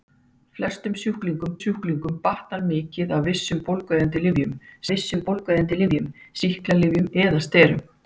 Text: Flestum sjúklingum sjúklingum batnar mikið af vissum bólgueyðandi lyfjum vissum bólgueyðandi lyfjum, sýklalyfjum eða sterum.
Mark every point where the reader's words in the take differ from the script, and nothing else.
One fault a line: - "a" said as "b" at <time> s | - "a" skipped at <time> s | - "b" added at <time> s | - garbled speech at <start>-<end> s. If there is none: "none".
none